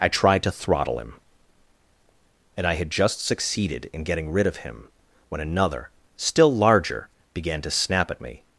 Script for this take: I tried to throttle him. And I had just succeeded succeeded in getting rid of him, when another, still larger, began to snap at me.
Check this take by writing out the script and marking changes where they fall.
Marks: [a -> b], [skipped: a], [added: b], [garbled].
I tried to throttle him. And I had just succeeded [skipped: succeeded] in getting rid of him, when another, still larger, began to snap at me.